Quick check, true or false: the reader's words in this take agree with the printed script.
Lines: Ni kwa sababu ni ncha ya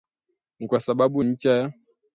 false